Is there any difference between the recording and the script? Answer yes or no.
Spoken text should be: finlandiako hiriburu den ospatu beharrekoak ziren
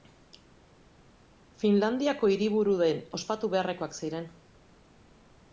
no